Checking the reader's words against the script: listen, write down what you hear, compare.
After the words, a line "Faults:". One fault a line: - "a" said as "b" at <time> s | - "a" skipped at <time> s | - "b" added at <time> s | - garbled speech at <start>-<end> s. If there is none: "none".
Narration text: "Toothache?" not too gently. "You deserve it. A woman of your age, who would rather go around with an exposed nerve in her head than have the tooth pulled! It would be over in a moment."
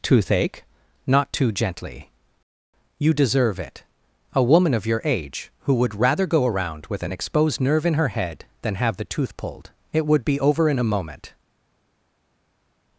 "Toothache?" not too gently. "You deserve it. A woman of your age, who would rather go around with an exposed nerve in her head than have the tooth pulled! It would be over in a moment."
Faults:
none